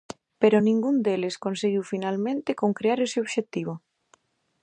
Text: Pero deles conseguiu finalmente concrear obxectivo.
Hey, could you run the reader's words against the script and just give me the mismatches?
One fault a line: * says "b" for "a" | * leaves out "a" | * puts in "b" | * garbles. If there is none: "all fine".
* puts in "ningún"
* puts in "ese"